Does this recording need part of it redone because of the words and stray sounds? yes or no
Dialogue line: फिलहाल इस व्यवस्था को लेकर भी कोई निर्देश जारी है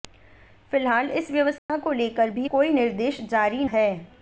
yes